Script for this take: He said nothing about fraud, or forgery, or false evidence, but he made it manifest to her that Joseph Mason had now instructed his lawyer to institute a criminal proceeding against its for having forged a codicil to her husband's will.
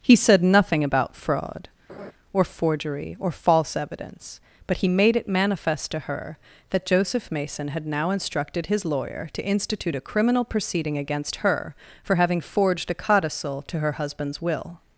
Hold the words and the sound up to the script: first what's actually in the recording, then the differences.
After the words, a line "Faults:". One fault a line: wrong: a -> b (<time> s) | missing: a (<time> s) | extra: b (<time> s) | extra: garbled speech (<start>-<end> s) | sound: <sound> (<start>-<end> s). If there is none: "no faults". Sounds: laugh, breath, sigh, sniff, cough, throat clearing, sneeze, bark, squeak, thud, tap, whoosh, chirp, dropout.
He said nothing about fraud, or forgery, or false evidence, but he made it manifest to her that Joseph Mason had now instructed his lawyer to institute a criminal proceeding against her for having forged a codicil to her husband's will.
Faults:
sound: laugh (1.9-2.1 s)
wrong: its -> her (11.4 s)